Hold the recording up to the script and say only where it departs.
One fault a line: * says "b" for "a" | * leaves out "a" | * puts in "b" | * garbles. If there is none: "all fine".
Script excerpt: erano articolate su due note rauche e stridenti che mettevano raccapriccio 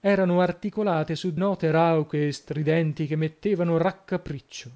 * leaves out "due"